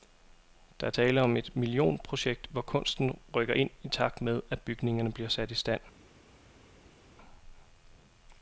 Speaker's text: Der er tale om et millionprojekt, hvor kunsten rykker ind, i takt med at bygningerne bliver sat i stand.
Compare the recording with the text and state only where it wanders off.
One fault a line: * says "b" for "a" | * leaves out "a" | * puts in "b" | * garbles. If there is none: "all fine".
all fine